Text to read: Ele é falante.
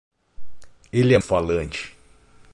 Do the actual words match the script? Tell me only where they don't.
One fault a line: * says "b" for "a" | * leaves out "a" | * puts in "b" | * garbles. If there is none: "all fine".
all fine